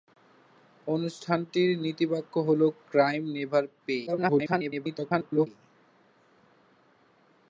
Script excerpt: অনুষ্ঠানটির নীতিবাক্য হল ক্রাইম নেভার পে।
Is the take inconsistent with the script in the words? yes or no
yes